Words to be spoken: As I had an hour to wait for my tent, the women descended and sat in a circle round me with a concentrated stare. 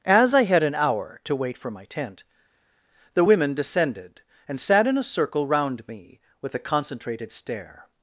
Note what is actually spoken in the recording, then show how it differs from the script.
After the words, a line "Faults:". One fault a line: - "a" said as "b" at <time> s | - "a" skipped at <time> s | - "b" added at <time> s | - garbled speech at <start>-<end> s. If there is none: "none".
As I had an hour to wait for my tent, the women descended and sat in a circle round me with a concentrated stare.
Faults:
none